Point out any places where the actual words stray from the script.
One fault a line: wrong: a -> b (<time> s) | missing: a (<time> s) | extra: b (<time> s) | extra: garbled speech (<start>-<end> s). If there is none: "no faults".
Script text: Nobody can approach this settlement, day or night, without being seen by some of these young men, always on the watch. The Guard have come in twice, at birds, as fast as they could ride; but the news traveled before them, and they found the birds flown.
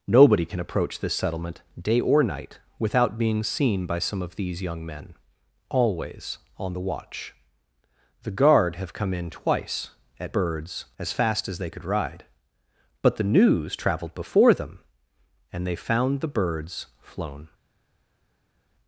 no faults